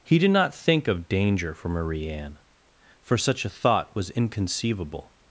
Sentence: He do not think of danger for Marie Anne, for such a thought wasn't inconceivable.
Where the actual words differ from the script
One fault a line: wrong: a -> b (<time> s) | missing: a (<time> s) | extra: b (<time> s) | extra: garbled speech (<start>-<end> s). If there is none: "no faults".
wrong: do -> did (0.2 s)
wrong: wasn't -> was (4.0 s)